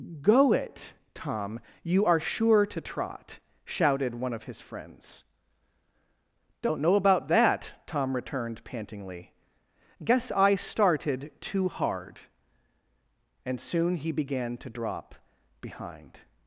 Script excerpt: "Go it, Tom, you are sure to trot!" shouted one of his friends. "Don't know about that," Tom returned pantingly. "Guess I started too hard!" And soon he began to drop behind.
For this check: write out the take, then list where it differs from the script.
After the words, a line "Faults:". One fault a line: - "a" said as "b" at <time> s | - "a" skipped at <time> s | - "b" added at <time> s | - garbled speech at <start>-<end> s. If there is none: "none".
"Go it, Tom, you are sure to trot!" shouted one of his friends. "Don't know about that," Tom returned pantingly. "Guess I started too hard!" And soon he began to drop behind.
Faults:
none